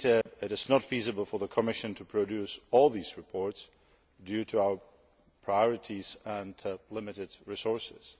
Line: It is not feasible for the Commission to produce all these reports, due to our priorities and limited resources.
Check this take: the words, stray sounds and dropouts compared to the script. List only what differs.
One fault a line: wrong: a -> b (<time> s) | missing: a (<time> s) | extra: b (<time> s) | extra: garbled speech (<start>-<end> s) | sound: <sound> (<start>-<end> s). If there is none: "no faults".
sound: dropout (0.2-0.3 s)